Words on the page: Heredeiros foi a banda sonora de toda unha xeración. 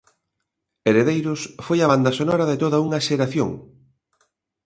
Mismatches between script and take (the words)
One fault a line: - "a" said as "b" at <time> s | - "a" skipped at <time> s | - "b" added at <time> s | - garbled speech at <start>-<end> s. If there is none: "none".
none